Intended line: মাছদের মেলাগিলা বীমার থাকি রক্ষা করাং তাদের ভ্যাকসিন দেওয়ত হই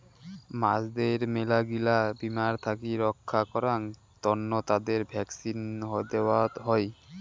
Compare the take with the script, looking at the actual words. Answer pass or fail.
fail